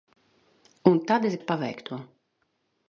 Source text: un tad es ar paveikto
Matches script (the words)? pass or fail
pass